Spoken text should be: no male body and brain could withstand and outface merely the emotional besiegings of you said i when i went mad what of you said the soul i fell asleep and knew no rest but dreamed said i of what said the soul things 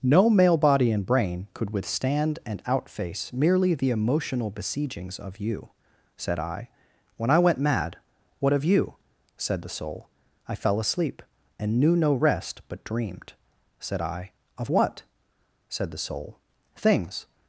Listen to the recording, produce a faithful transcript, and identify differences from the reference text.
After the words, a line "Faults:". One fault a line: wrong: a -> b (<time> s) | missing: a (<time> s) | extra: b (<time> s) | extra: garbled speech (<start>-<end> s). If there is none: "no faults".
no male body and brain could withstand and outface merely the emotional besiegings of you said i when i went mad what of you said the soul i fell asleep and knew no rest but dreamed said i of what said the soul things
Faults:
no faults